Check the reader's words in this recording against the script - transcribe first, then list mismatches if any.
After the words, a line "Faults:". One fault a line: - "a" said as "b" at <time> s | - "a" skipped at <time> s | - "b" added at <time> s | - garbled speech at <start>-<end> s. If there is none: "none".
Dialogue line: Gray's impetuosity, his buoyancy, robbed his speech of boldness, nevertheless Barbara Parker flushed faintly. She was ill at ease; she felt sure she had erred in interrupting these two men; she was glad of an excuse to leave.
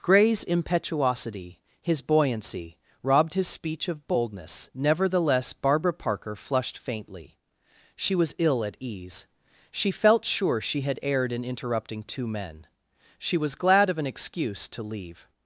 Gray's impetuosity, his buoyancy, robbed his speech of boldness, nevertheless Barbara Parker flushed faintly. She was ill at ease; she felt sure she had erred in interrupting two men; she was glad of an excuse to leave.
Faults:
- "these" skipped at 12.0 s